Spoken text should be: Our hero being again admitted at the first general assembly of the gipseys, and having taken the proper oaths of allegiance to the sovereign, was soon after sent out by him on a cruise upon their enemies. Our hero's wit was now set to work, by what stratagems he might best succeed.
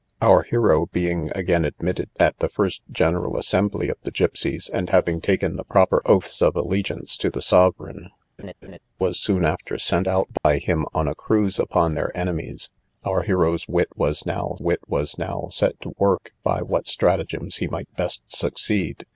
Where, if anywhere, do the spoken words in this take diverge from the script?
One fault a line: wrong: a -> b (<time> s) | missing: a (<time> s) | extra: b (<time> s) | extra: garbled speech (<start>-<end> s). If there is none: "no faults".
extra: wit was now (14.6 s)